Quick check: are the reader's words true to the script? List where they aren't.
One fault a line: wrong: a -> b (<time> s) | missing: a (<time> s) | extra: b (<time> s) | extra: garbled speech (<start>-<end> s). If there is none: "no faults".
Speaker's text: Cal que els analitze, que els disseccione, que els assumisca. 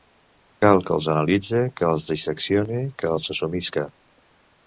no faults